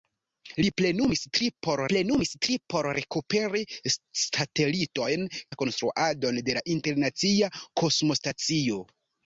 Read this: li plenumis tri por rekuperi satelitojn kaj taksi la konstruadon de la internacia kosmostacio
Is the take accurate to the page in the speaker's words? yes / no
no